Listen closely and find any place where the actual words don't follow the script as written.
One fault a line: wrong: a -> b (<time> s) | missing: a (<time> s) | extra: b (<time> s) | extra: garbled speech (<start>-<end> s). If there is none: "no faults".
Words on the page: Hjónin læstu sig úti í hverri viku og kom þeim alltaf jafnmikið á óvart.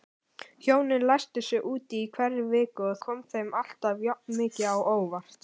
no faults